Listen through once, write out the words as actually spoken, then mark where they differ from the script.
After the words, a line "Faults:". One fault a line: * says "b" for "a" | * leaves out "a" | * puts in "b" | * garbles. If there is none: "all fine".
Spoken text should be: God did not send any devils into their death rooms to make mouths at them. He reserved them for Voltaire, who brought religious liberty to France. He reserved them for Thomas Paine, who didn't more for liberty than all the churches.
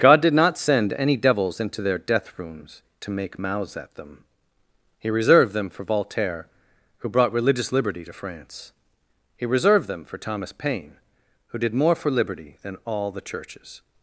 God did not send any devils into their death rooms to make mouths at them. He reserved them for Voltaire, who brought religious liberty to France. He reserved them for Thomas Paine, who did more for liberty than all the churches.
Faults:
* says "did" for "didn't"